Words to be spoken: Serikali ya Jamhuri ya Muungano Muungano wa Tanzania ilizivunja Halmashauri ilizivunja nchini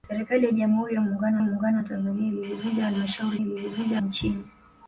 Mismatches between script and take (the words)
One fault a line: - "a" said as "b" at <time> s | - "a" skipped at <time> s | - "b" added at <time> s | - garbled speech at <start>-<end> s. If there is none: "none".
none